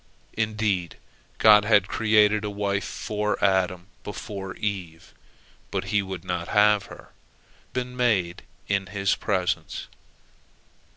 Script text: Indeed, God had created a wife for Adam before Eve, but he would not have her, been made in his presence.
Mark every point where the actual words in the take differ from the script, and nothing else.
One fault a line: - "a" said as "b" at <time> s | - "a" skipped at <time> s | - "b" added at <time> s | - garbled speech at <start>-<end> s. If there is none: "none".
none